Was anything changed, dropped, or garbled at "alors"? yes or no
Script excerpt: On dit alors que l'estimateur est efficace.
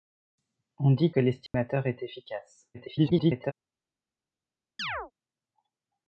yes